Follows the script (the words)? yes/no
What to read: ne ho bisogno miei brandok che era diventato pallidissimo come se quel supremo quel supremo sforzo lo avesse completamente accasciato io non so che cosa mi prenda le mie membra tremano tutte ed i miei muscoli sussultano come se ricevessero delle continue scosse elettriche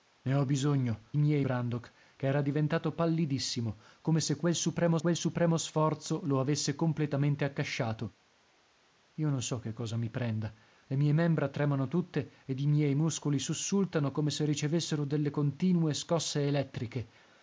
yes